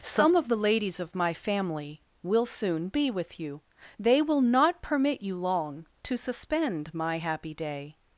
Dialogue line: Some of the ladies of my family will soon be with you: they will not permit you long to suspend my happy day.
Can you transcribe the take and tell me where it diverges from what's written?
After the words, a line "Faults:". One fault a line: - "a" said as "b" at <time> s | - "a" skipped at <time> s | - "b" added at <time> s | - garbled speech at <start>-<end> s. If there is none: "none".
Some of the ladies of my family will soon be with you: they will not permit you long to suspend my happy day.
Faults:
none